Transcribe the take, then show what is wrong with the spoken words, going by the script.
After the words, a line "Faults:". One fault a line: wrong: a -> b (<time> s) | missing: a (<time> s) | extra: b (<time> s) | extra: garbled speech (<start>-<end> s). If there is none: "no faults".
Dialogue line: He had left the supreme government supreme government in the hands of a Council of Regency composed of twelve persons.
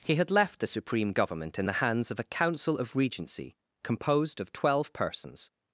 He had left the supreme government in the hands of a Council of Regency composed of twelve persons.
Faults:
missing: supreme government (1.6 s)